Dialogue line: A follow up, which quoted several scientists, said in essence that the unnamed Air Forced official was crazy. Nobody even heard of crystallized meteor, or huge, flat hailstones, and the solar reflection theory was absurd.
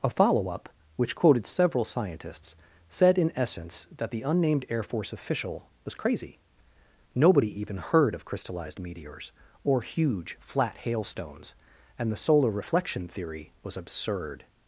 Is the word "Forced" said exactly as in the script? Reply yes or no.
no